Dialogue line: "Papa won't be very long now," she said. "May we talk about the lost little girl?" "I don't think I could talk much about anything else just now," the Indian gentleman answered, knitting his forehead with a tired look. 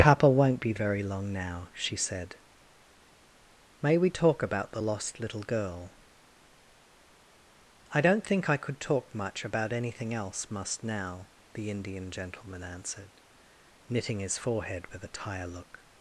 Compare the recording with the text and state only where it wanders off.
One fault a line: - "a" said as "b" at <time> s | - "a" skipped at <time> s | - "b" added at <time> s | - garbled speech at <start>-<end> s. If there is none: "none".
- "just" said as "must" at 10.5 s
- "tired" said as "tire" at 15.1 s